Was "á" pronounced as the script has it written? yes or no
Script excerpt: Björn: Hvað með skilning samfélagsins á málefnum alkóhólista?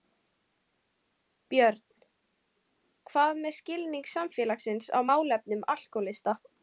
yes